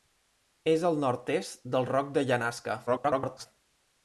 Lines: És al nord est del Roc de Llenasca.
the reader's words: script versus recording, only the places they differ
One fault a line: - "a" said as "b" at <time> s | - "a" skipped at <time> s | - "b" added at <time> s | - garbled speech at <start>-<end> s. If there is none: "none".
- garbled speech at 2.9-3.5 s